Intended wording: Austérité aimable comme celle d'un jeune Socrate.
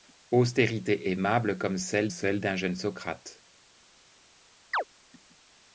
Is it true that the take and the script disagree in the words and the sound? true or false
true